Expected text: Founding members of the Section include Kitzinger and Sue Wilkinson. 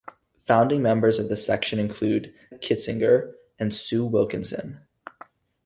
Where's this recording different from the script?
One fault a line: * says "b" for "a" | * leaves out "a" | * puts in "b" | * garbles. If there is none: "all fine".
all fine